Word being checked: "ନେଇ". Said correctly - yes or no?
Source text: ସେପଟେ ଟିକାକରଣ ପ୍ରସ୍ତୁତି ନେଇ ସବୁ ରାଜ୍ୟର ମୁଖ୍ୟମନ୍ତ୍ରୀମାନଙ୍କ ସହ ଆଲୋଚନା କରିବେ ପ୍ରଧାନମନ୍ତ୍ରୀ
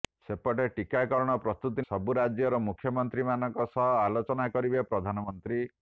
no